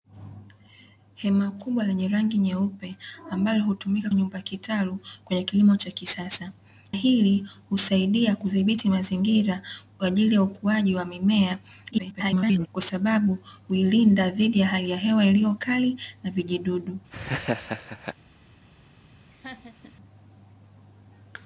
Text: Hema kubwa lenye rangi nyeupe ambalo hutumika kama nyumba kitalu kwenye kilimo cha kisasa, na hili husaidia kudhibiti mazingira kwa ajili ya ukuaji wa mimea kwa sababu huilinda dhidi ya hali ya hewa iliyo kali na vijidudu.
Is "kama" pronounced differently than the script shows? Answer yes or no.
yes